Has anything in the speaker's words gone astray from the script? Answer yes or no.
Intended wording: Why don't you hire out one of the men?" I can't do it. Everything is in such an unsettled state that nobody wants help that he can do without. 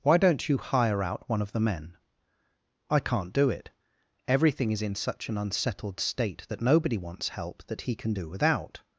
no